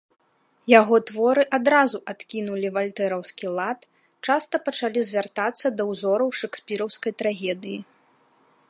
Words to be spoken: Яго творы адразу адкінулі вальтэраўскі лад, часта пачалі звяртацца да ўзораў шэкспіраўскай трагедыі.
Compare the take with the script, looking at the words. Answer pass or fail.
pass